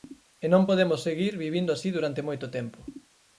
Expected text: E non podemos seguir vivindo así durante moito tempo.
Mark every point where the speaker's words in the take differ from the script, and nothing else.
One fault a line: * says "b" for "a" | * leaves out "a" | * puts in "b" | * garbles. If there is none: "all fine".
all fine